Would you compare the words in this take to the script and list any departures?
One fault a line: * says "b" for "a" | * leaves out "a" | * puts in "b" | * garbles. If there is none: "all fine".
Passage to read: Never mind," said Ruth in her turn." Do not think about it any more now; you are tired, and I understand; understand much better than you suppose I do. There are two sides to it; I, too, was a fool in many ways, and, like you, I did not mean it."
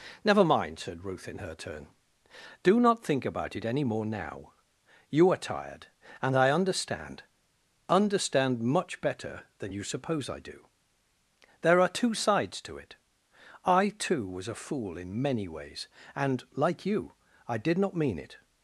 all fine